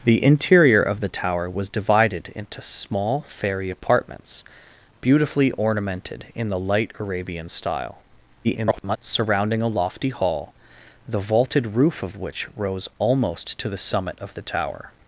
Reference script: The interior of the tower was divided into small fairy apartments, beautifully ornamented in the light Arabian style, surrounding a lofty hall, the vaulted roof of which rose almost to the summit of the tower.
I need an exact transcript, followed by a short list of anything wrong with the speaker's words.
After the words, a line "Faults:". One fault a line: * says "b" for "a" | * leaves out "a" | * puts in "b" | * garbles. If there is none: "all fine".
The interior of the tower was divided into small fairy apartments, beautifully ornamented in the light Arabian style, [garbled] surrounding a lofty hall, the vaulted roof of which rose almost to the summit of the tower.
Faults:
* garbles